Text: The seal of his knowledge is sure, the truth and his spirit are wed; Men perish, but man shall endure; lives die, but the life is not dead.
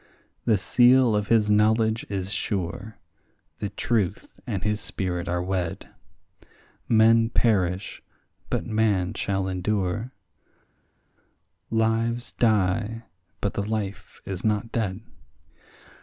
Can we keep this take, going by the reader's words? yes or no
yes